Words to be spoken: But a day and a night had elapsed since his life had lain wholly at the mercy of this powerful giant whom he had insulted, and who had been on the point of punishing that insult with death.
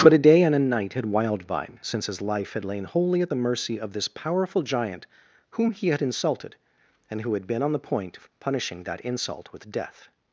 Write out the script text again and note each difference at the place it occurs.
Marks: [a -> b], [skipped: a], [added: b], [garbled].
But a day and a night had [elapsed -> wildvine] since his life had lain wholly at the mercy of this powerful giant whom he had insulted, and who had been on the point of punishing that insult with death.